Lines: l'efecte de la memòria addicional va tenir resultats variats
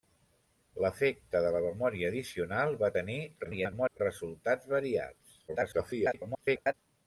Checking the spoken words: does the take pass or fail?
fail